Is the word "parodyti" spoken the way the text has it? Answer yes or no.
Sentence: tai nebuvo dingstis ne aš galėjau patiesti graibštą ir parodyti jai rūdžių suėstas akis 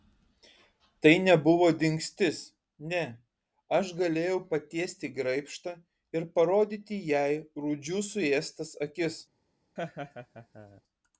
yes